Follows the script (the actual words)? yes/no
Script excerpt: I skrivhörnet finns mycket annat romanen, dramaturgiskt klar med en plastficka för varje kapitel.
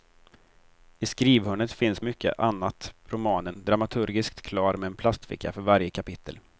yes